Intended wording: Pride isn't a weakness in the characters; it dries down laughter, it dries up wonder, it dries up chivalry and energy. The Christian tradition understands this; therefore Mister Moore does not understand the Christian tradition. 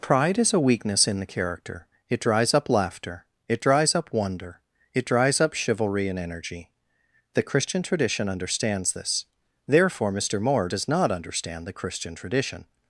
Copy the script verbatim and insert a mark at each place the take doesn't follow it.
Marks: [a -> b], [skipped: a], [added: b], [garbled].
Pride [isn't -> is] a weakness in the [characters; -> character] it dries [down -> up] laughter, it dries up wonder, it dries up chivalry and energy. The Christian tradition understands this; therefore Mister Moore does not understand the Christian tradition.